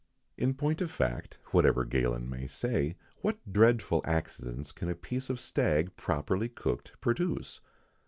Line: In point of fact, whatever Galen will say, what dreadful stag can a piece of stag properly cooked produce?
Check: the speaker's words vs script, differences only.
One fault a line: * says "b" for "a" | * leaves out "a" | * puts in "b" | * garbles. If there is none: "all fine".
* says "may" for "will"
* says "accidents" for "stag"